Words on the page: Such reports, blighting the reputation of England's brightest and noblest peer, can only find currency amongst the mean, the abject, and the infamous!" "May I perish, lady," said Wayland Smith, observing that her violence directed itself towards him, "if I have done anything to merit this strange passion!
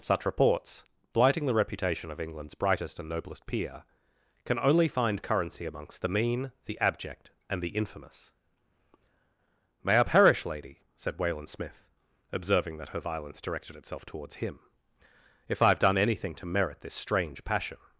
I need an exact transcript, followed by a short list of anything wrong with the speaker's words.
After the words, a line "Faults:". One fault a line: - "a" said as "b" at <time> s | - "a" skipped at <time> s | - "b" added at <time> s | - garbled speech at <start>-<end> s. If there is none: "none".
Such reports, blighting the reputation of England's brightest and noblest peer, can only find currency amongst the mean, the abject, and the infamous!" "May I perish, lady," said Wayland Smith, observing that her violence directed itself towards him, "if I have done anything to merit this strange passion!
Faults:
none